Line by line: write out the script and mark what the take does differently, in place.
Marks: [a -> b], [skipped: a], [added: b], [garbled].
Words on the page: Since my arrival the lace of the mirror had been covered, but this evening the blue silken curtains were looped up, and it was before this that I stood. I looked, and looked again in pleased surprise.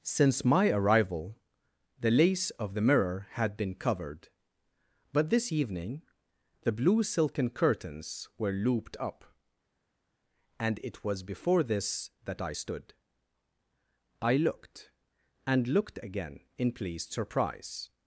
Since my arrival the lace of the mirror had been covered, but this evening the blue silken curtains were looped up, and it was before this that I stood. I looked, and looked again in pleased surprise.